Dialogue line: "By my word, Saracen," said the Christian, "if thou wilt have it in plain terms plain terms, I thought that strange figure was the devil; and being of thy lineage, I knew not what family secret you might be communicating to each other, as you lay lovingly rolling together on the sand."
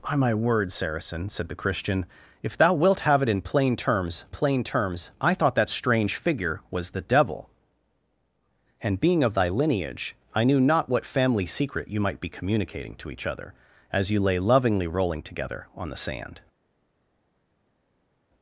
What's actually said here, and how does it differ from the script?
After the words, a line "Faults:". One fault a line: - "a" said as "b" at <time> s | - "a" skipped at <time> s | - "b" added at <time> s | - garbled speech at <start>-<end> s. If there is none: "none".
"By my word, Saracen," said the Christian, "if thou wilt have it in plain terms plain terms, I thought that strange figure was the devil; and being of thy lineage, I knew not what family secret you might be communicating to each other, as you lay lovingly rolling together on the sand."
Faults:
none